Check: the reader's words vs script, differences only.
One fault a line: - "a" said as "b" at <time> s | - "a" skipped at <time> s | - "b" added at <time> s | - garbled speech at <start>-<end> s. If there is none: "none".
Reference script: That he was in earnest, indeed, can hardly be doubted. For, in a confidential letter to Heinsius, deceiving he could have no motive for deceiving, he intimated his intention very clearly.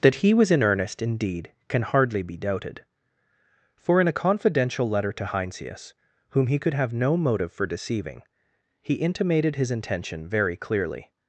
- "deceiving" said as "whom" at 6.3 s